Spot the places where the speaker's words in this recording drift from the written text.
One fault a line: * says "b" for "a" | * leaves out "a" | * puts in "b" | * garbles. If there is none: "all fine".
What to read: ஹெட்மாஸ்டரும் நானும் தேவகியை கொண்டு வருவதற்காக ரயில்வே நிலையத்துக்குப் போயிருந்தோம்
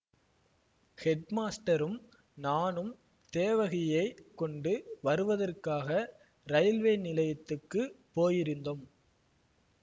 all fine